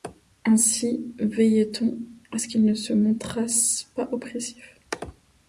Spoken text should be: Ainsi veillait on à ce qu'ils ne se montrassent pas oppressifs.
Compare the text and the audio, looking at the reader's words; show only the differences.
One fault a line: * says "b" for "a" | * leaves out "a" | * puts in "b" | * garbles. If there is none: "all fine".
all fine